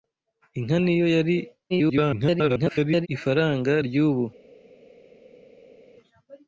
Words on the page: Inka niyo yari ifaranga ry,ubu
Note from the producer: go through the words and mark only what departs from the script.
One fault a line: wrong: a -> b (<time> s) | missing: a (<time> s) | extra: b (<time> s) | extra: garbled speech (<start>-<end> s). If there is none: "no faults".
extra: garbled speech (1.7-3.1 s)